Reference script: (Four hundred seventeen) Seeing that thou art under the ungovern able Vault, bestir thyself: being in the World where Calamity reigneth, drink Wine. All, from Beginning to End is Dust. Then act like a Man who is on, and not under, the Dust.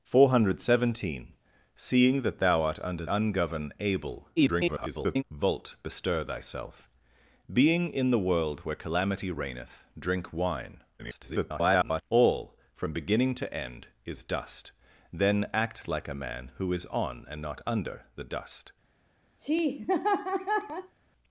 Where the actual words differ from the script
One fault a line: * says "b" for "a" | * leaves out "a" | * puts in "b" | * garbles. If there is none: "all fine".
* leaves out "the"
* garbles
* garbles